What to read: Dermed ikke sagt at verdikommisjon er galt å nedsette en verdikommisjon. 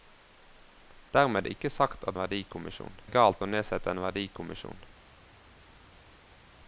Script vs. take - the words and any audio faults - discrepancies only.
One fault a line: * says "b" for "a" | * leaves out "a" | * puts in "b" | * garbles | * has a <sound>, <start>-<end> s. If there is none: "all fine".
all fine